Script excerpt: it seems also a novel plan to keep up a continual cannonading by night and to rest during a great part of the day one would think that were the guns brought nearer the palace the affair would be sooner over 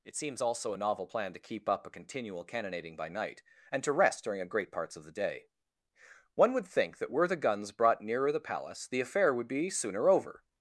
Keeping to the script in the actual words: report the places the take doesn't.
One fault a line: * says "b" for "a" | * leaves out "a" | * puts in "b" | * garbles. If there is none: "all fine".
* says "parts" for "part"